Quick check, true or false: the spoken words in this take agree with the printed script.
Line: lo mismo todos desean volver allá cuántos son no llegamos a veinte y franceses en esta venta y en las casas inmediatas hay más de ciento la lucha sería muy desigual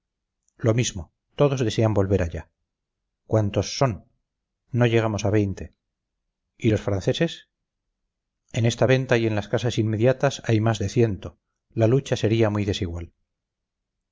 false